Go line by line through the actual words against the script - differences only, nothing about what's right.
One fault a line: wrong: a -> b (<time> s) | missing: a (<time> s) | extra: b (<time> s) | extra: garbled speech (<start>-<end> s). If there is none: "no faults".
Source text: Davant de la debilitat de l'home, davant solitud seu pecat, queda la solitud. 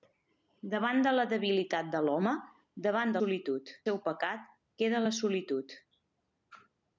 no faults